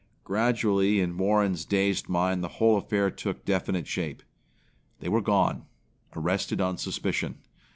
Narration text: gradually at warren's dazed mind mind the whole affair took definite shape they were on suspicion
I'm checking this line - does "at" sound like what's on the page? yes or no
no